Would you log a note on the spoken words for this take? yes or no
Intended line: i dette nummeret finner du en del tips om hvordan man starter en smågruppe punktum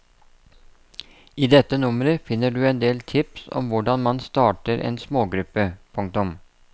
no